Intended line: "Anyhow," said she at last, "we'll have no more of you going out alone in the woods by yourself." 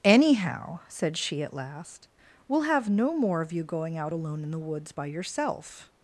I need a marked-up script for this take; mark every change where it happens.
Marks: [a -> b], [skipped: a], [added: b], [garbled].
"Anyhow," said she at last, "we'll have no more of you going out alone in the woods by yourself."